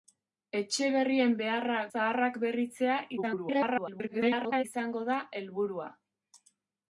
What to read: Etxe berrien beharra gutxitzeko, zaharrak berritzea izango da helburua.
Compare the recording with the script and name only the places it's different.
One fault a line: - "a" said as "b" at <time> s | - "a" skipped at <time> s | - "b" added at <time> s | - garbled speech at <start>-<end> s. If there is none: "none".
- "gutxitzeko" skipped at 1.8 s
- garbled speech at 3.2-4.6 s